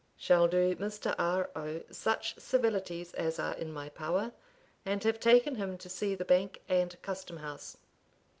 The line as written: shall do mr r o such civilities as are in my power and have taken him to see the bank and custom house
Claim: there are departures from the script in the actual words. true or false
false